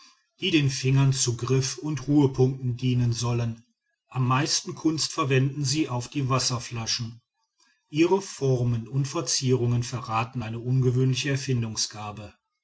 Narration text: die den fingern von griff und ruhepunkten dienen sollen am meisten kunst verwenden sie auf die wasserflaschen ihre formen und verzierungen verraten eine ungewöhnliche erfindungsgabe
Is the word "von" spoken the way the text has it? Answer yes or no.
no